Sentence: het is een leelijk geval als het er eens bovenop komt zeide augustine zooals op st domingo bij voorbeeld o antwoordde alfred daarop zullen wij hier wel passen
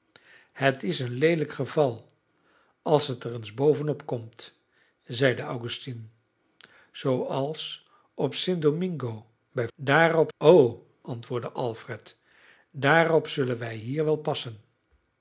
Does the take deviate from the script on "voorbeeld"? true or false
true